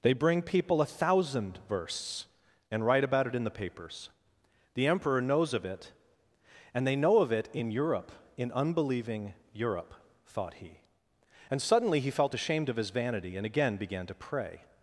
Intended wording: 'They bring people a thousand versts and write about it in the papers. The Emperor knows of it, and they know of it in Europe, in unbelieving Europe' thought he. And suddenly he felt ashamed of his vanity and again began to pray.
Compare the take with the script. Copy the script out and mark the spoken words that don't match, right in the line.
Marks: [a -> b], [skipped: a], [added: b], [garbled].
'They bring people a thousand versts and write about it in the papers. The Emperor knows of it, and they know of it in Europe, in unbelieving Europe' thought he. And suddenly he felt ashamed of his vanity and again began to pray.